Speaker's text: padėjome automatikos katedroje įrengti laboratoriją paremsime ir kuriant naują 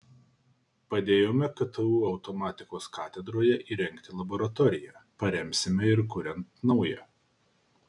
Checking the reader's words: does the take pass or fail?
fail